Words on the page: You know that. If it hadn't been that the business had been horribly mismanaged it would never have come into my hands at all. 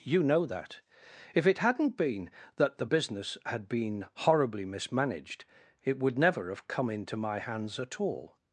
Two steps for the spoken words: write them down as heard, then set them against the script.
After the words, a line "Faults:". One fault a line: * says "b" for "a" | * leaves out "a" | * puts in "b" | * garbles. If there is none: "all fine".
You know that. If it hadn't been that the business had been horribly mismanaged it would never have come into my hands at all.
Faults:
all fine